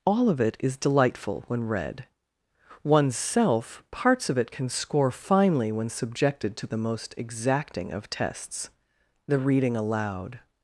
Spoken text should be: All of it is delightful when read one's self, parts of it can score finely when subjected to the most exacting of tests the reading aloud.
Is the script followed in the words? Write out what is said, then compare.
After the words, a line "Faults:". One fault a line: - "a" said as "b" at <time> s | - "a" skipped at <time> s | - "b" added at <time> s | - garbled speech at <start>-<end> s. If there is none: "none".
All of it is delightful when read one's self, parts of it can score finely when subjected to the most exacting of tests the reading aloud.
Faults:
none